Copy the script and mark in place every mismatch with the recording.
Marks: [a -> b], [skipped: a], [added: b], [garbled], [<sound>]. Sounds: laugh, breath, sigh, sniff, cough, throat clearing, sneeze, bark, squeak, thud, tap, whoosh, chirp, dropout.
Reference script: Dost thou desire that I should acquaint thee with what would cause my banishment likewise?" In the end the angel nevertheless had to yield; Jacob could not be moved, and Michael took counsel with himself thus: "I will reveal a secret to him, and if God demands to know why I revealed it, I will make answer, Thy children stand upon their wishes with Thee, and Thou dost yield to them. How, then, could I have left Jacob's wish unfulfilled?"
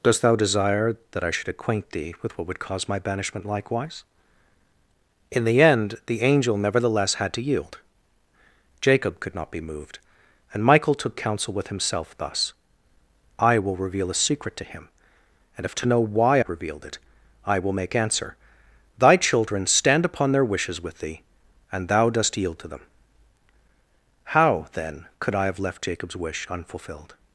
Dost thou desire that I should acquaint thee with what would cause my banishment likewise?" In the end the angel nevertheless had to yield; Jacob could not be moved, and Michael took counsel with himself thus: "I will reveal a secret to him, and if [skipped: God demands] to know why [skipped: I] revealed it, I will make answer, Thy children stand upon their wishes with Thee, and Thou dost yield to them. How, then, could I have left Jacob's wish unfulfilled?"